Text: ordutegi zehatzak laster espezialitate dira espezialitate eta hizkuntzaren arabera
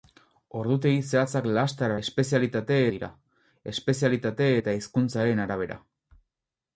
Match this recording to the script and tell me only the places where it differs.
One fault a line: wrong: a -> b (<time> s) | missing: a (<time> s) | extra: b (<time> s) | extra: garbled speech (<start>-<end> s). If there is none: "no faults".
no faults